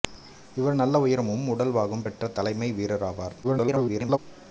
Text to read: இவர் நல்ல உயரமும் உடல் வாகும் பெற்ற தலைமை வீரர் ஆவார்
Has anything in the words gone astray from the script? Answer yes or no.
yes